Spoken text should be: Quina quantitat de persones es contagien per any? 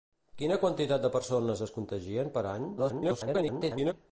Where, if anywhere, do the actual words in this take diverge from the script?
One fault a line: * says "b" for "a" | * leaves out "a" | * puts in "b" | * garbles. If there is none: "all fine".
* garbles